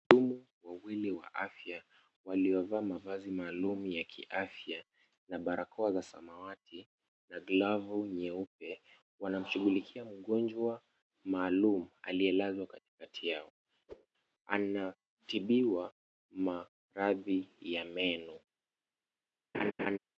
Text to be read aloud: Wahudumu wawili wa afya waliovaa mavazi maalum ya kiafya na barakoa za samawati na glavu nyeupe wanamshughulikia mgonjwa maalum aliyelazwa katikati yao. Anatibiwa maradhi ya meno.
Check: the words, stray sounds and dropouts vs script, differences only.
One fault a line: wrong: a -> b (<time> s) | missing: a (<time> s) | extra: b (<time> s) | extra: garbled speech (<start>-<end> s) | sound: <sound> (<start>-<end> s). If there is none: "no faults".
sound: whoosh (13.9-14.1 s)
sound: laugh (19.5-20.0 s)